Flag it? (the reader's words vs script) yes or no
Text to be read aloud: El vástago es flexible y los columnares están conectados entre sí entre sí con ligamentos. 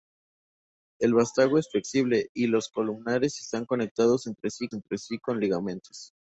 no